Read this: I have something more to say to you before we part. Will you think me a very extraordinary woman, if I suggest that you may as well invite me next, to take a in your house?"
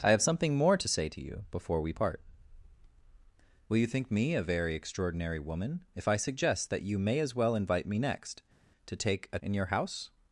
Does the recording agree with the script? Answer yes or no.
yes